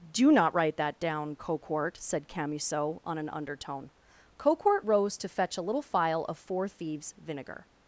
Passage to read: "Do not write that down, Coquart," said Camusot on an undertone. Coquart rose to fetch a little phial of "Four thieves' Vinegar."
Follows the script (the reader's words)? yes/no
yes